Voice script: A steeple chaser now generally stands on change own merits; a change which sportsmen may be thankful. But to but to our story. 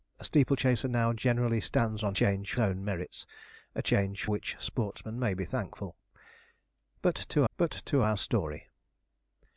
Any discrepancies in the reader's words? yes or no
no